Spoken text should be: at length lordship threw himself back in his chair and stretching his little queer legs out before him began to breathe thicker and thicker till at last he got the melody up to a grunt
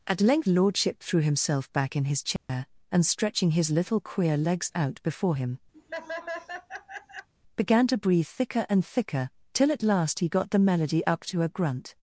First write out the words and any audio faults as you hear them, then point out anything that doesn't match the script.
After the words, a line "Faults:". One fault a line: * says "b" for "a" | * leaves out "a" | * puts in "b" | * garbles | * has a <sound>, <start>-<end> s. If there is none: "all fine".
at length lordship threw himself back in his chair and stretching his little queer legs out before him began to breathe thicker and thicker till at last he got the melody up to a grunt
Faults:
* has a dropout, 2.4-2.5 s
* has a laugh, 5.7-7.3 s